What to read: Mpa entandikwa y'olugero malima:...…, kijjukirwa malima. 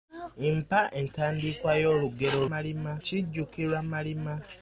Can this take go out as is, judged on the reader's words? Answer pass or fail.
pass